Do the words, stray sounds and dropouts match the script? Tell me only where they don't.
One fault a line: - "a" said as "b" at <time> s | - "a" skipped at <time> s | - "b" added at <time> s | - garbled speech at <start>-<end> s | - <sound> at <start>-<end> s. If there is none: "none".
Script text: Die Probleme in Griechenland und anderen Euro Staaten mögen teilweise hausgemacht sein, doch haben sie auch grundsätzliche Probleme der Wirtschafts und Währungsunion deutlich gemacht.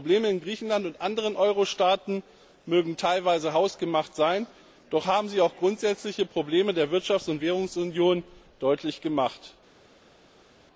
none